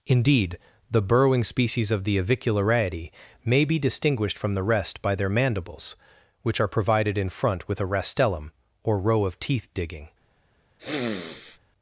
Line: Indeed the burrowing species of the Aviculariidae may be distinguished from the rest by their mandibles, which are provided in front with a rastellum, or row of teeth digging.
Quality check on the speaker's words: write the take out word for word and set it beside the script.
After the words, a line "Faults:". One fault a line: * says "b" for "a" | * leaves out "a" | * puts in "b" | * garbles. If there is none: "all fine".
Indeed the burrowing species of the Aviculariidae may be distinguished from the rest by their mandibles, which are provided in front with a rastellum, or row of teeth digging.
Faults:
all fine